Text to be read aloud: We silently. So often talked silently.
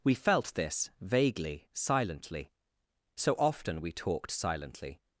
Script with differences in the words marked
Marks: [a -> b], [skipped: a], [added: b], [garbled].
We [added: felt this vaguely] silently. So often [added: we] talked silently.